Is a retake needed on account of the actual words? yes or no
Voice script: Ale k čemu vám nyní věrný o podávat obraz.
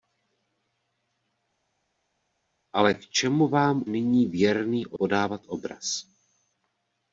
no